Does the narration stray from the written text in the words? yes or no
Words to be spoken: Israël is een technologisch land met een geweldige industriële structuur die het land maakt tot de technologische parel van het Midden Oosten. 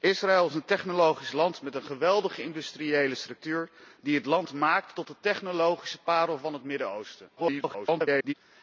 yes